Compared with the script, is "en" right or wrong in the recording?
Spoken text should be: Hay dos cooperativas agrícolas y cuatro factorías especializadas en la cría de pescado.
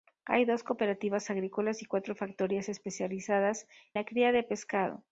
wrong